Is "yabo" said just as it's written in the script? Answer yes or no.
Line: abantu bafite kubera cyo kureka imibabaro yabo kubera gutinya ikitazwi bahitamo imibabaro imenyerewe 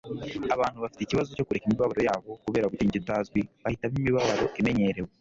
yes